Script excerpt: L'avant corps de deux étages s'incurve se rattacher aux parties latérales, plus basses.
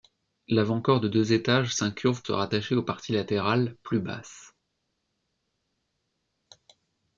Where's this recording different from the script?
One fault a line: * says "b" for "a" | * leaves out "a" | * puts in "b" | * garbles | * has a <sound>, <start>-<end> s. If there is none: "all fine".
all fine